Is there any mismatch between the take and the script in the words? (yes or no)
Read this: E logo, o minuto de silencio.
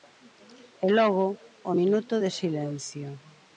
no